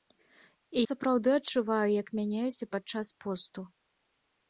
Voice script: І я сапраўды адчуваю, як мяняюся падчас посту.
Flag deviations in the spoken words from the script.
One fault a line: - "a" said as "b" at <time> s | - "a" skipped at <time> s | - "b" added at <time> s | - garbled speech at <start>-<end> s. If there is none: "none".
- "я" skipped at 0.8 s